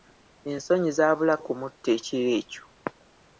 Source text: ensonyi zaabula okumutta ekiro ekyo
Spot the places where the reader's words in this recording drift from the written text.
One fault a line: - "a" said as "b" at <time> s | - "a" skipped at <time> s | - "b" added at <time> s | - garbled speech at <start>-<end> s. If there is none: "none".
none